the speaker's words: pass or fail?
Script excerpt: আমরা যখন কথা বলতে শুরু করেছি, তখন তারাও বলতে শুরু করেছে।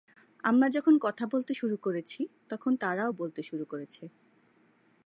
pass